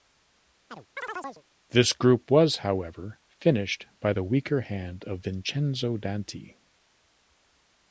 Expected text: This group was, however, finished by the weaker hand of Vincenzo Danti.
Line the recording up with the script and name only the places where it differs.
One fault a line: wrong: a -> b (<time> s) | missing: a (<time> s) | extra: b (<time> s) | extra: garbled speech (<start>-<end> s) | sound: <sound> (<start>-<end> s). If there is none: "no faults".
sound: chirp (0.7-1.4 s)